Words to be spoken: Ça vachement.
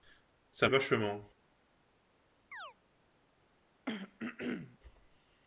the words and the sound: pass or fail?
fail